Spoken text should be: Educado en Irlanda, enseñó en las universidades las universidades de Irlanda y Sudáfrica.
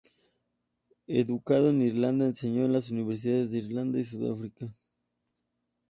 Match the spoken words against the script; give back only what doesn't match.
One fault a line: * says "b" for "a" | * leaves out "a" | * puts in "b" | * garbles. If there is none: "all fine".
* leaves out "las universidades"